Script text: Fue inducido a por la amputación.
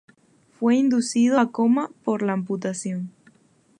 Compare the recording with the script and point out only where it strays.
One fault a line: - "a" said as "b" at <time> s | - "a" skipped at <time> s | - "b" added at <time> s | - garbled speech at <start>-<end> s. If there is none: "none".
- "coma" added at 1.5 s